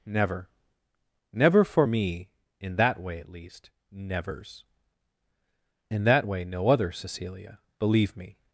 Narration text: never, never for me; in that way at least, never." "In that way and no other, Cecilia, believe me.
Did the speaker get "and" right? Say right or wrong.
wrong